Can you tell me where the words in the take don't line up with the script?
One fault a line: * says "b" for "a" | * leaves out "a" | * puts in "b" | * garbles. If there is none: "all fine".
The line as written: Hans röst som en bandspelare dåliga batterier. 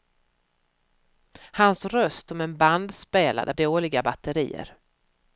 all fine